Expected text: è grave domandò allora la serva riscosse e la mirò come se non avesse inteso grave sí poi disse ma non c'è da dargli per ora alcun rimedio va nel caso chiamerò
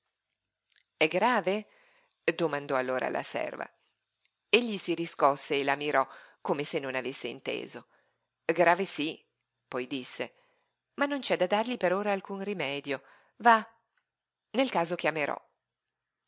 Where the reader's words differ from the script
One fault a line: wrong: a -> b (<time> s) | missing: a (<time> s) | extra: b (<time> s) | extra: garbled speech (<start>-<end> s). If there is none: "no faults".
extra: egli si (4.5 s)